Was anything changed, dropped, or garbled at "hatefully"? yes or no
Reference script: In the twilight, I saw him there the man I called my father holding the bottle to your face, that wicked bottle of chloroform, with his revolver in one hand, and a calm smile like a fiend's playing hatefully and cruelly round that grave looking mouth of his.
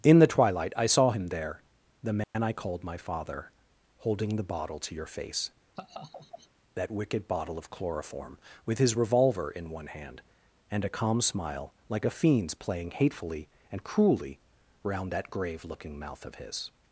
no